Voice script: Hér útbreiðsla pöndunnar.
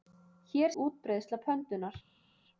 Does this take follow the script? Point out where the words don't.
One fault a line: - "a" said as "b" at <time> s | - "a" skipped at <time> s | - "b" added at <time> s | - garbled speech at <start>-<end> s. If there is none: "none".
none